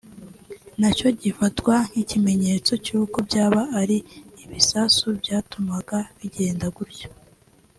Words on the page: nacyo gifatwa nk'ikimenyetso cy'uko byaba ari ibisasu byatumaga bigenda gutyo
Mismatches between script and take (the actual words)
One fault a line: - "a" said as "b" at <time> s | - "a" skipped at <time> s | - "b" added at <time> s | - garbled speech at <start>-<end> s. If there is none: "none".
none